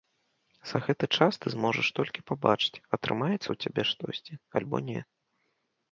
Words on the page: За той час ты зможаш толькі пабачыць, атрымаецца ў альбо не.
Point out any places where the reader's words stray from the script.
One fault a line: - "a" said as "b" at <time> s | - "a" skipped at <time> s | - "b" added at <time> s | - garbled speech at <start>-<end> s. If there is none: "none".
- "той" said as "гэты" at 0.8 s
- "цябе штосьці" added at 3.7 s